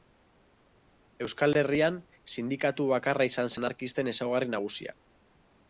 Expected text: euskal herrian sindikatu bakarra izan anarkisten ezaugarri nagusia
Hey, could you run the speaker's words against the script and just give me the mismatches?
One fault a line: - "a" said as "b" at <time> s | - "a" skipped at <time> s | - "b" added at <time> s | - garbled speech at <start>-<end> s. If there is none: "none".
none